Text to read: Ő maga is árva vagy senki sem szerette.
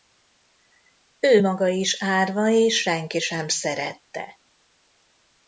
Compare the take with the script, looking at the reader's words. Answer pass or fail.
fail